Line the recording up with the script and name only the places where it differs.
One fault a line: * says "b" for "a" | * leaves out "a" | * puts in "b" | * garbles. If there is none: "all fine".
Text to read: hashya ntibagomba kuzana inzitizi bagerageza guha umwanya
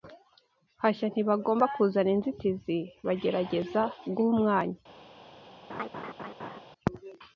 all fine